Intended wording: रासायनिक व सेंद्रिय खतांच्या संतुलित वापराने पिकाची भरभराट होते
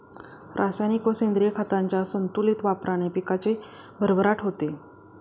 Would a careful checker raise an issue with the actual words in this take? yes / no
no